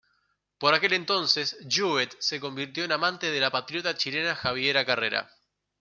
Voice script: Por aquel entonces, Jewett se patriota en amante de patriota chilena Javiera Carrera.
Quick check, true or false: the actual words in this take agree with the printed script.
false